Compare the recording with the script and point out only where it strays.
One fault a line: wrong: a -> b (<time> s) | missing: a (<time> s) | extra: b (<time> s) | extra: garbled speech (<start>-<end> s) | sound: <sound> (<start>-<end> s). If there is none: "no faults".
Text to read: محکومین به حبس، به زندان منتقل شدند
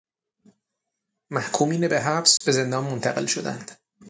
sound: dropout (2.4-2.4 s)